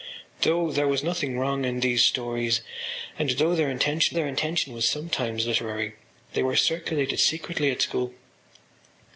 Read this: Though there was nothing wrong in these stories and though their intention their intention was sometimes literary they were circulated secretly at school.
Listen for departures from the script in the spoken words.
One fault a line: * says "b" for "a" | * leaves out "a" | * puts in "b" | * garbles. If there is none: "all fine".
all fine